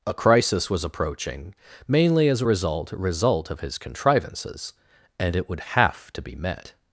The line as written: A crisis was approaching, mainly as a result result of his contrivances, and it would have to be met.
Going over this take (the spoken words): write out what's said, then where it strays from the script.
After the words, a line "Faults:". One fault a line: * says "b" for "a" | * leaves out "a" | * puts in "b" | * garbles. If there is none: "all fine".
A crisis was approaching, mainly as a result result of his contrivances, and it would have to be met.
Faults:
all fine